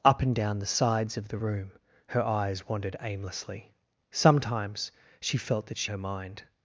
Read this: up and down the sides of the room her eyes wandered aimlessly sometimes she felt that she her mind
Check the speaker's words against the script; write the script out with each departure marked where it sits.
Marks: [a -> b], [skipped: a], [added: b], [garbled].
up and down the sides of the room her eyes wandered aimlessly sometimes she felt that she her mind